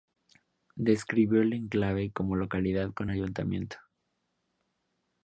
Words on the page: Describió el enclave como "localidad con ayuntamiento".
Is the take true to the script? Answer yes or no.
yes